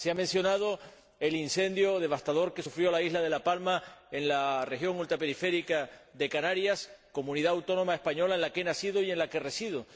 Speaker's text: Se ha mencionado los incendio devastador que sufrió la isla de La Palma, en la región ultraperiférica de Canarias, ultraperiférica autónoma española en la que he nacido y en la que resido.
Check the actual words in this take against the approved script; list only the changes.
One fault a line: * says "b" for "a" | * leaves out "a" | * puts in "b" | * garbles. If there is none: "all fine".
* says "el" for "los"
* says "comunidad" for "ultraperiférica"